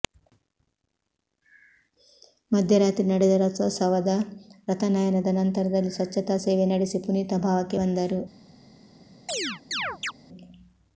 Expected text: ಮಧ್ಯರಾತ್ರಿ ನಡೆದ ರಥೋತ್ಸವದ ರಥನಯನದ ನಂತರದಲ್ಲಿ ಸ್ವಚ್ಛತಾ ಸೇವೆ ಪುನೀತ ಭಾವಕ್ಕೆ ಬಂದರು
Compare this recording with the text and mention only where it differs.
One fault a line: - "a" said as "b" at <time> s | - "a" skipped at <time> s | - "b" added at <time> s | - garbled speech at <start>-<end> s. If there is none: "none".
- "ನಡೆಸಿ" added at 6.7 s